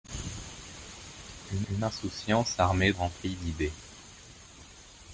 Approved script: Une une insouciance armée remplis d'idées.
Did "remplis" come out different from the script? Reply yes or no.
no